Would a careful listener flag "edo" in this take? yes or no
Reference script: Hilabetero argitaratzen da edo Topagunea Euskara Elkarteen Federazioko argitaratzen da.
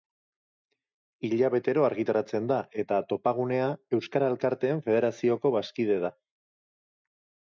yes